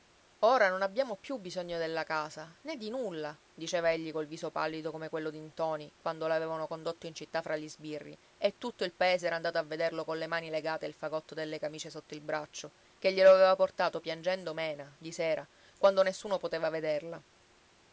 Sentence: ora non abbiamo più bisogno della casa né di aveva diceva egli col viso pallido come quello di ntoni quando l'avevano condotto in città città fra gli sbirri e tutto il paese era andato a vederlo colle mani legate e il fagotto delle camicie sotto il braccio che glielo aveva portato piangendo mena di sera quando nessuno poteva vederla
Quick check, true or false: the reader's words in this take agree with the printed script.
false